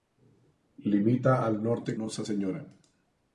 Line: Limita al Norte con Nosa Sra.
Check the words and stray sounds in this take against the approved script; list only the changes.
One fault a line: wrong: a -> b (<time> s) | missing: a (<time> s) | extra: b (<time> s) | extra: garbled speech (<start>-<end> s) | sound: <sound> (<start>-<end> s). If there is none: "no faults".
missing: con (1.9 s)